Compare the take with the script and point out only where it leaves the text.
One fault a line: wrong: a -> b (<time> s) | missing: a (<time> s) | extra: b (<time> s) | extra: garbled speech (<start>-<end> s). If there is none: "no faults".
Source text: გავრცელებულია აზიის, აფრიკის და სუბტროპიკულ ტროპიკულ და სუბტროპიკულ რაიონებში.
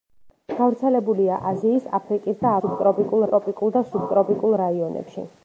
no faults